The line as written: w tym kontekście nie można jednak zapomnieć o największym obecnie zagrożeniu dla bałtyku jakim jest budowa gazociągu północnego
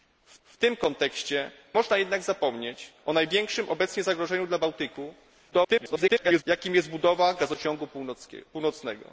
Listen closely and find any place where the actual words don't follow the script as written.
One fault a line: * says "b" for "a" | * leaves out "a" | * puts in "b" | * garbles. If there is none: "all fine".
* puts in "w"
* leaves out "nie"
* garbles